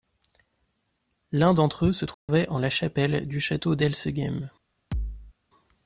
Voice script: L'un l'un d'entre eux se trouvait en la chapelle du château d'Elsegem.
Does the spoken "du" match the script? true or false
true